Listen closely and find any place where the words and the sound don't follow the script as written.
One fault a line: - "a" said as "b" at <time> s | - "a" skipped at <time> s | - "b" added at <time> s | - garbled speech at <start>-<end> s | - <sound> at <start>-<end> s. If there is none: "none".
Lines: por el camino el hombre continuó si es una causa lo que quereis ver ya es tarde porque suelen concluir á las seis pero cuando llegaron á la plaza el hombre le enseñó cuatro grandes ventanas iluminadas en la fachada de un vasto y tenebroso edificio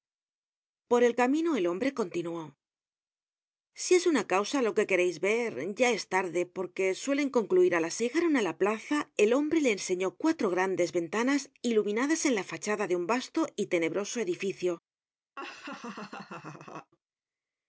- "seis pero cuando" skipped at 7.9 s
- laugh at 15.4-16.9 s